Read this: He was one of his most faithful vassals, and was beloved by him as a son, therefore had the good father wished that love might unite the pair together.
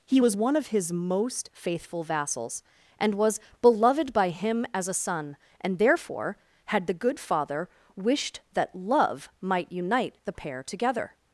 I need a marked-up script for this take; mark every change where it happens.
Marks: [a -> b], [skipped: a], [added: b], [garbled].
He was one of his most faithful vassals, and was beloved by him as a son, [added: and] therefore had the good father wished that love might unite the pair together.